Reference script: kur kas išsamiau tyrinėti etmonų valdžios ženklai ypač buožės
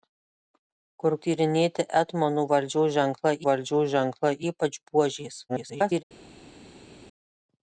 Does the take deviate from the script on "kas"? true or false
true